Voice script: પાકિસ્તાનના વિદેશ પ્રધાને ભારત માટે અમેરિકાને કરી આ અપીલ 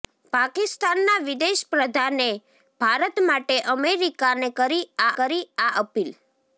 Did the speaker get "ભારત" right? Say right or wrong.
right